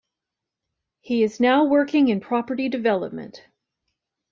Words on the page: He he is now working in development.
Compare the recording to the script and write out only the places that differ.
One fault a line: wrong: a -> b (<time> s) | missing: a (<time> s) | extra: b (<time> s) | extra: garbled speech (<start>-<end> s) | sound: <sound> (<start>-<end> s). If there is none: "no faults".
missing: he (1.2 s)
extra: property (2.2 s)